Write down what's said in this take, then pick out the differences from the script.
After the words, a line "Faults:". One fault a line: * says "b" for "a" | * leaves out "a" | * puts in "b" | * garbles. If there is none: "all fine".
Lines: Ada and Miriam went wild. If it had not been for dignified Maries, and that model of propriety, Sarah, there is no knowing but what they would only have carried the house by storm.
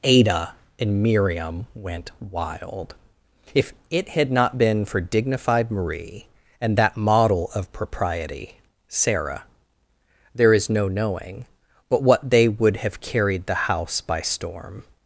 Ada and Miriam went wild. If it had not been for dignified Marie, and that model of propriety, Sarah, there is no knowing but what they would have carried the house by storm.
Faults:
* says "Marie" for "Maries"
* leaves out "only"